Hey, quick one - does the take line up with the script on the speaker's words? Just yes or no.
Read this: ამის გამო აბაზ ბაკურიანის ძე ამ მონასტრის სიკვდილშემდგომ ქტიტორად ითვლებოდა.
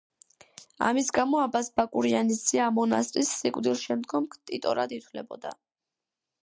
yes